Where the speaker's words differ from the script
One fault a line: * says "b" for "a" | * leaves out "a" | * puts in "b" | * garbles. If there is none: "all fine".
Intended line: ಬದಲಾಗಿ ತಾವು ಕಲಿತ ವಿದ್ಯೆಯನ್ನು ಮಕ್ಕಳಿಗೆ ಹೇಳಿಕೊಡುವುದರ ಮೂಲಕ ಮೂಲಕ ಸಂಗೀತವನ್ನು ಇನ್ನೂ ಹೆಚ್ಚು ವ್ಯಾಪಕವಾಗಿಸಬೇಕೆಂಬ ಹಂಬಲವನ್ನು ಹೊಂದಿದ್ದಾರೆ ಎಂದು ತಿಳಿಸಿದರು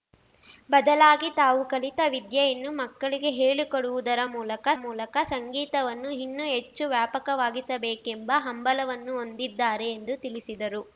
all fine